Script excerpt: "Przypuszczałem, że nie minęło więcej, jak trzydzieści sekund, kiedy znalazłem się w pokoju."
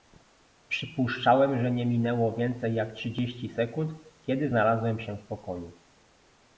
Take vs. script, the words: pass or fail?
pass